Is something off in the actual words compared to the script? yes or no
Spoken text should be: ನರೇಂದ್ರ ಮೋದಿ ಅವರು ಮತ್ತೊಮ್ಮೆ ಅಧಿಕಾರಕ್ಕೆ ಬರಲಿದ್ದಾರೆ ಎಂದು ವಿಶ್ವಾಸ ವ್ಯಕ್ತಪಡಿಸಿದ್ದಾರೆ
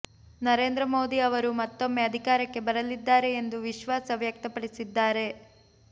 no